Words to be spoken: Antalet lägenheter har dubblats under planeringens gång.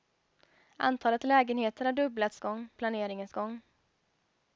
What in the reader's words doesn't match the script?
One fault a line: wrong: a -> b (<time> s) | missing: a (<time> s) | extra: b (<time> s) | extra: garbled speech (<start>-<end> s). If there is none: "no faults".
wrong: under -> gång (2.4 s)